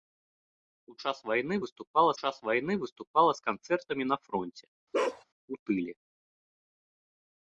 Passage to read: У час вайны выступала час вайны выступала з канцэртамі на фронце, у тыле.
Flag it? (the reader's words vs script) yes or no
no